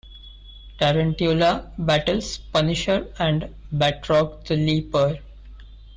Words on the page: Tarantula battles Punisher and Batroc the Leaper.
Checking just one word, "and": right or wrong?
right